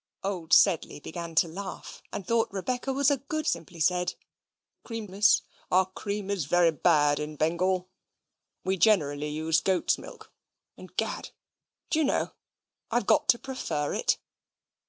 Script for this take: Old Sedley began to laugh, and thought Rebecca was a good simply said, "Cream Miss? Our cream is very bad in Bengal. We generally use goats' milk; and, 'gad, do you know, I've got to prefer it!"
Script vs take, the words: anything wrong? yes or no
no